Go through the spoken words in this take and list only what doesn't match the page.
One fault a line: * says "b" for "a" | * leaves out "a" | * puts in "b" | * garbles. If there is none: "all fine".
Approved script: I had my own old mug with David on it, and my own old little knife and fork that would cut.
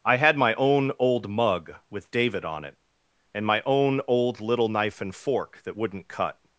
* says "wouldn't" for "would"